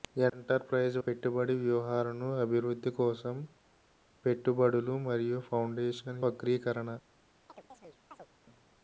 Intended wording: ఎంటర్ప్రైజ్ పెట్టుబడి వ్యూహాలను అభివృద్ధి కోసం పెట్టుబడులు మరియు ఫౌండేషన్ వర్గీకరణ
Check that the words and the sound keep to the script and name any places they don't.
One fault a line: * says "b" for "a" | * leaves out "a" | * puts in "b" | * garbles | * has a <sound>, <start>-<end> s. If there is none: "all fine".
* has a chirp, 7.5-8.3 s